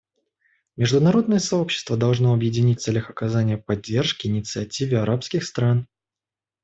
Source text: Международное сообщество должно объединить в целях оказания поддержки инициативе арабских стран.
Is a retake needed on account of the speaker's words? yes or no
no